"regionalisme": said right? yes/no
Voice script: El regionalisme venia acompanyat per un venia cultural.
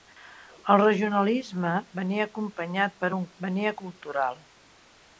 yes